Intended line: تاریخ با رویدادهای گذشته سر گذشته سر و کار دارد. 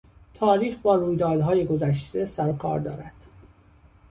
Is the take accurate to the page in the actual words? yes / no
no